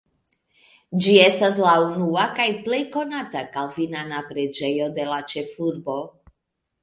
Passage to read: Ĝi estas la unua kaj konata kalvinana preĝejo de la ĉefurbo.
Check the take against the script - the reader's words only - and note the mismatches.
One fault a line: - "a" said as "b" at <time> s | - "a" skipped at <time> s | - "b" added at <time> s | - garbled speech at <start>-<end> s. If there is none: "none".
- "plej" added at 2.6 s